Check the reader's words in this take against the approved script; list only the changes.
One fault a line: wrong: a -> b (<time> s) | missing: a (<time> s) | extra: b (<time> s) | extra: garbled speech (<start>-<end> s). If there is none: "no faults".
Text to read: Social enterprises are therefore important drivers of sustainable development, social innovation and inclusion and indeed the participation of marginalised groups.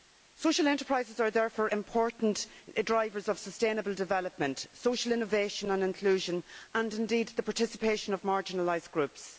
no faults